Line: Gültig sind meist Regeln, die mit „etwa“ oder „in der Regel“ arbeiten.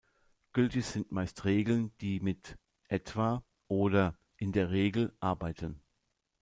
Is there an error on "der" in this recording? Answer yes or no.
no